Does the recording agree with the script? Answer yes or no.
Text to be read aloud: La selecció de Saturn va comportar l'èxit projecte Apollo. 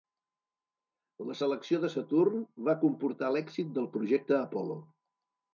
no